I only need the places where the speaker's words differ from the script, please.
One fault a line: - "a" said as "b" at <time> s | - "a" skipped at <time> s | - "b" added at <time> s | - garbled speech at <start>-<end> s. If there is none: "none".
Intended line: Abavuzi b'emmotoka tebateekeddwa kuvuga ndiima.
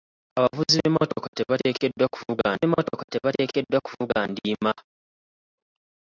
- "b'emmotoka tebateekeddwa kuvuga" added at 2.6 s